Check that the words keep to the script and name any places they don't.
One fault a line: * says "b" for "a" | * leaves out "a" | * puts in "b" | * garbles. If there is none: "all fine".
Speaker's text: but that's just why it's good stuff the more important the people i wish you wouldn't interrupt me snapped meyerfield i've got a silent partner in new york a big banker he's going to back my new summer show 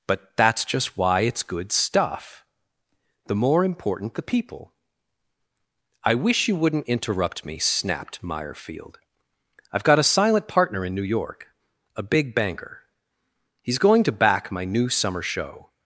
all fine